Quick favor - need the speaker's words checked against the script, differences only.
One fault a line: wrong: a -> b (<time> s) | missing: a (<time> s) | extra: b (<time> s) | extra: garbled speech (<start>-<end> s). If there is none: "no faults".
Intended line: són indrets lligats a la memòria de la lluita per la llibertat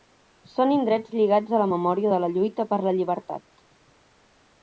no faults